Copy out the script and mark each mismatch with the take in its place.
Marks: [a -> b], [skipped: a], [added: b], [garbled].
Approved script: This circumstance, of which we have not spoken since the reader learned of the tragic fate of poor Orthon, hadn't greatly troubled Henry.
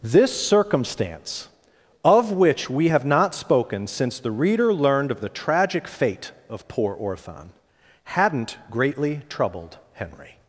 This circumstance, of which we have not spoken since the reader learned of the tragic fate of poor Orthon, hadn't greatly troubled Henry.